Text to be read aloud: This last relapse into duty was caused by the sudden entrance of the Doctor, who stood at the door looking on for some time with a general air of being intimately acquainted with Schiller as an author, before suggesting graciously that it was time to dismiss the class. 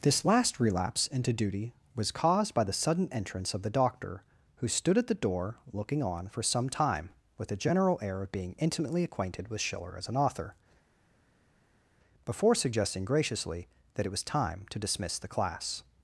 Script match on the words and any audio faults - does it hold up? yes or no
yes